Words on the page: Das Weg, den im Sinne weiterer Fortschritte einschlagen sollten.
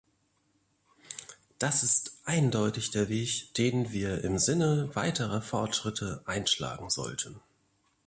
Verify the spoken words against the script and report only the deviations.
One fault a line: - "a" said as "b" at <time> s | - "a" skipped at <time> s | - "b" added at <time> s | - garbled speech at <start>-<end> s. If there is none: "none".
- "ist eindeutig der" added at 1.8 s
- "wir" added at 3.9 s